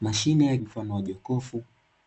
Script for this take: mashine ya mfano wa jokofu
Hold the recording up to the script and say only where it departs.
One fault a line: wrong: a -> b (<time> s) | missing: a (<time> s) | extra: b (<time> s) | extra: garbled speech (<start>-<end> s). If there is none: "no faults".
no faults